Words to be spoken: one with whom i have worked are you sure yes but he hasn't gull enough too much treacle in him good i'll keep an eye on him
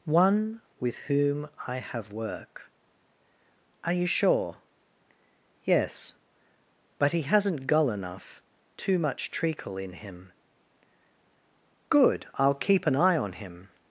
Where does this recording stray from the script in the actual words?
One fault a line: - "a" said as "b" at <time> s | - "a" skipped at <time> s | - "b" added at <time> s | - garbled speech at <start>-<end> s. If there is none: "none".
- "worked" said as "work" at 2.1 s